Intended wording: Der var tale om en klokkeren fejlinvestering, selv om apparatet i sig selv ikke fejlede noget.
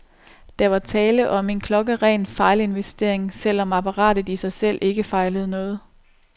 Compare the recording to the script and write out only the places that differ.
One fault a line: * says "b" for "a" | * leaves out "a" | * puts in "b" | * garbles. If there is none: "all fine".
all fine